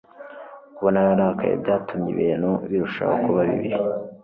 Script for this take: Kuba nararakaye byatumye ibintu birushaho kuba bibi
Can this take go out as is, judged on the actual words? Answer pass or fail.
pass